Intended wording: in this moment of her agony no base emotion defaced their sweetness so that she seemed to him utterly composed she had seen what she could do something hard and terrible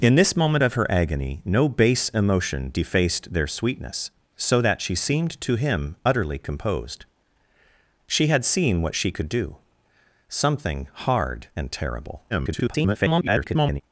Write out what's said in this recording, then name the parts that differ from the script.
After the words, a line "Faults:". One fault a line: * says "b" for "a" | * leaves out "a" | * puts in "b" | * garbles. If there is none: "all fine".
in this moment of her agony no base emotion defaced their sweetness so that she seemed to him utterly composed she had seen what she could do something hard and terrible [garbled]
Faults:
* garbles